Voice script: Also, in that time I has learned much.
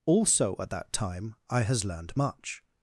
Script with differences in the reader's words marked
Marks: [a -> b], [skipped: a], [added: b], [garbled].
Also, [in -> at] that time I has learned much.